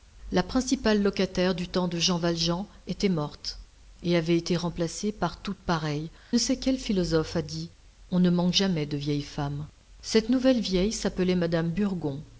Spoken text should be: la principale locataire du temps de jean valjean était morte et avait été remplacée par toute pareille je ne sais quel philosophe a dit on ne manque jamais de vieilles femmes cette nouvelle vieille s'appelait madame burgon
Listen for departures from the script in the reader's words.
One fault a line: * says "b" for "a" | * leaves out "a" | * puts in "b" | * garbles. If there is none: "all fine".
* leaves out "je"